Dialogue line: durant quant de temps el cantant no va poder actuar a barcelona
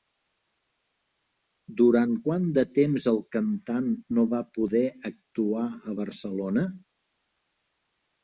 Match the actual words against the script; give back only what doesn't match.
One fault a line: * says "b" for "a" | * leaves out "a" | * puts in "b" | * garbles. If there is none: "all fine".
all fine